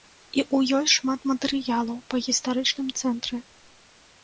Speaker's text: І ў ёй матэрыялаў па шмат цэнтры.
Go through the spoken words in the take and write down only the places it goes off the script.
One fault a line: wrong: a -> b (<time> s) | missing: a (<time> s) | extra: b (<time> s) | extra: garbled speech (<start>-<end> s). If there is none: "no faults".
extra: шмат (0.9 s)
wrong: шмат -> гістарычным (2.3 s)